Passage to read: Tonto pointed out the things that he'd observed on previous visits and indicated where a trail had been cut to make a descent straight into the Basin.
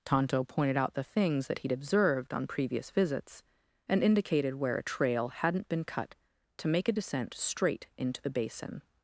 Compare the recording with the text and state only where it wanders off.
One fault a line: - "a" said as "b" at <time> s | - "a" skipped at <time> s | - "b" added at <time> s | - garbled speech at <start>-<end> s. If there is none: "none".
- "had" said as "hadn't" at 5.3 s